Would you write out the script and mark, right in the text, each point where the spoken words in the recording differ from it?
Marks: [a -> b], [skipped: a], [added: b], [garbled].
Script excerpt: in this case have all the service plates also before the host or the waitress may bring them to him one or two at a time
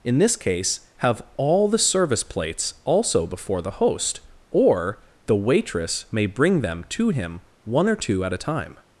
in this case have all the service plates also before the host or the waitress may bring them to him one or two at a time